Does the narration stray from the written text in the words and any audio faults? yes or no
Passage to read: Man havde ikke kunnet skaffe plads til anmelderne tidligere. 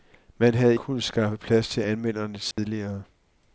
yes